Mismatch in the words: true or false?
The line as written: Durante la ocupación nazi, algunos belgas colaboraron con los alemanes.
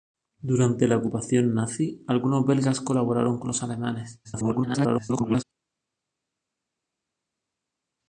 true